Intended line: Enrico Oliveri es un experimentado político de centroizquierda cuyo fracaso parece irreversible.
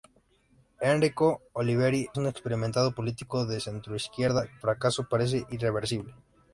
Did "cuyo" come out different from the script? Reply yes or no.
yes